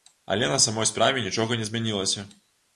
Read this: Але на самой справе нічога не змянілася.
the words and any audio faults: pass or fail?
pass